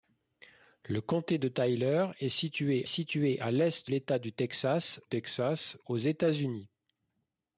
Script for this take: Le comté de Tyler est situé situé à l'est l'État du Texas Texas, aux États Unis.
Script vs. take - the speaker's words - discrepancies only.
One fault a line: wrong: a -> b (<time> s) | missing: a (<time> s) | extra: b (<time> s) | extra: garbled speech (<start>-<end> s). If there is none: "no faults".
no faults